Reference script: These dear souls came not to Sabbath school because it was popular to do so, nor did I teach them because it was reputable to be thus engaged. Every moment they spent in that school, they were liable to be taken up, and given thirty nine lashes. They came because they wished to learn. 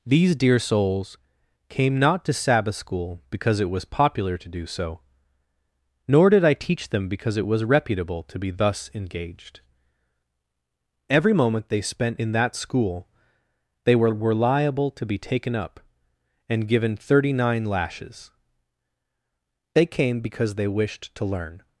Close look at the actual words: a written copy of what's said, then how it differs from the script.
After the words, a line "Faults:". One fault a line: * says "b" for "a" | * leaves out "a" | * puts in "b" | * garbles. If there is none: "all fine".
These dear souls came not to Sabbath school because it was popular to do so, nor did I teach them because it was reputable to be thus engaged. Every moment they spent in that school, they were were liable to be taken up, and given thirty nine lashes. They came because they wished to learn.
Faults:
* puts in "were"